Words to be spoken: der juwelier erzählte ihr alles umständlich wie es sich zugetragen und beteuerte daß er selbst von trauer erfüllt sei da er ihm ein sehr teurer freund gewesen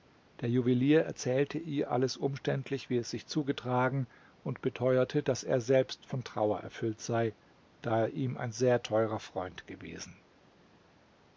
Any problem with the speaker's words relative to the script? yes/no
no